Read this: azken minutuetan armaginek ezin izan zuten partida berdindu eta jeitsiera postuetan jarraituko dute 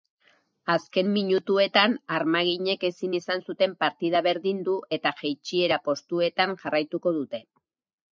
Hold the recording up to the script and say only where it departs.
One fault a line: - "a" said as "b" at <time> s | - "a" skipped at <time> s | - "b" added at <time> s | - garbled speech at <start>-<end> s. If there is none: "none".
none